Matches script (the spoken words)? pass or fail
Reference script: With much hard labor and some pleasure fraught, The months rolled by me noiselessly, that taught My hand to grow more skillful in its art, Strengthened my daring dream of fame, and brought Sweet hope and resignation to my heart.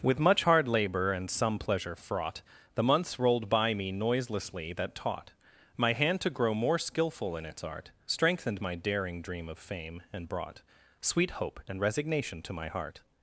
pass